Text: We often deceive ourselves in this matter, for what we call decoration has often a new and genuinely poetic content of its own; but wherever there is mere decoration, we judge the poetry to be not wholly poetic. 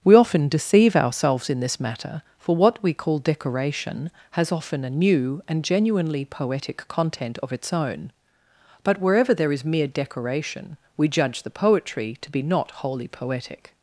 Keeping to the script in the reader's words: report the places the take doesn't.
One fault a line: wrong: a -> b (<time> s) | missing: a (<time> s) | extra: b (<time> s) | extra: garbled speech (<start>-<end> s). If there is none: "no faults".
no faults